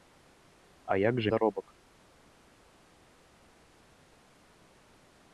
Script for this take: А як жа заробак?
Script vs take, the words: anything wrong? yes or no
no